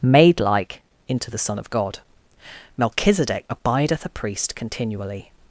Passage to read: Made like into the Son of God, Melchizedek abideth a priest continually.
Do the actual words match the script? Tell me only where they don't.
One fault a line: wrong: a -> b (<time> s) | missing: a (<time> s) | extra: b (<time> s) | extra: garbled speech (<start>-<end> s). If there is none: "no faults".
no faults